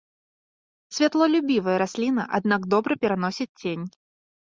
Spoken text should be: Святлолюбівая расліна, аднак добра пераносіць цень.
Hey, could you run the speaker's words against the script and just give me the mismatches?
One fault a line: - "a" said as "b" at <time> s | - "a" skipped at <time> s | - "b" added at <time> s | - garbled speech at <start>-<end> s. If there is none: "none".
none